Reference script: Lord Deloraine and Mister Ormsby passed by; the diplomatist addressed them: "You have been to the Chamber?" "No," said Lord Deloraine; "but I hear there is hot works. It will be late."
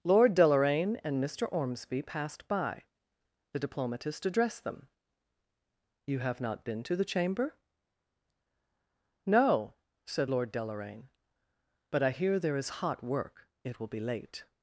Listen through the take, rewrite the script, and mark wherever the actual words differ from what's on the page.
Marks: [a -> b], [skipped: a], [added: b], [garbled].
Lord Deloraine and Mister Ormsby passed by; the diplomatist addressed them: "You have [added: not] been to the Chamber?" "No," said Lord Deloraine; "but I hear there is hot [works. -> work] It will be late."